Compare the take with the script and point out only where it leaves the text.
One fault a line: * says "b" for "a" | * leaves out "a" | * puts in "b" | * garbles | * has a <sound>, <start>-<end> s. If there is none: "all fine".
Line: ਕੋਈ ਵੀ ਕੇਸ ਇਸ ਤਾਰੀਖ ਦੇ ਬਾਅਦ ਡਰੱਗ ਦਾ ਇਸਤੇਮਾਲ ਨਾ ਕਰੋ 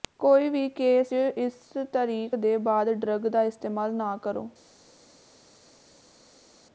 all fine